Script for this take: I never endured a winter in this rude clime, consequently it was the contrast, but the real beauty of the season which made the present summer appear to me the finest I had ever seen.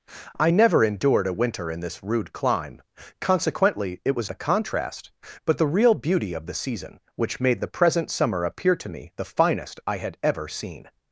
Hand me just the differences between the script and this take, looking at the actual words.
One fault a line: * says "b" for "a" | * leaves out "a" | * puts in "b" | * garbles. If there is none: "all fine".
all fine